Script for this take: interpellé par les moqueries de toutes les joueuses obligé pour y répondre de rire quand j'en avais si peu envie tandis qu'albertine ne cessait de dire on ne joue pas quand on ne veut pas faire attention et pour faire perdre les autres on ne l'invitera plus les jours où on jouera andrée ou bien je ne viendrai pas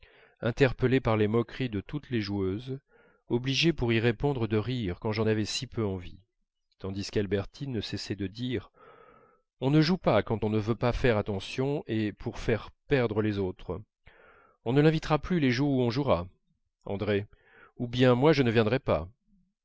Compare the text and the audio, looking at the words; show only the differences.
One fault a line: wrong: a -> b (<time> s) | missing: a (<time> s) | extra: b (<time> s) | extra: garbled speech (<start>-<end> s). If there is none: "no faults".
extra: moi (18.1 s)